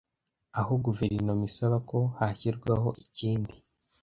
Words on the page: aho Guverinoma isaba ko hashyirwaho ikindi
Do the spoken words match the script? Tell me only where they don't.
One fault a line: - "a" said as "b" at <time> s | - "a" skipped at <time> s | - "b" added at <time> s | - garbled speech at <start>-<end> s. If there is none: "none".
none